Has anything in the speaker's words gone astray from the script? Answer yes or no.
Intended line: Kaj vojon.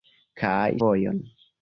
no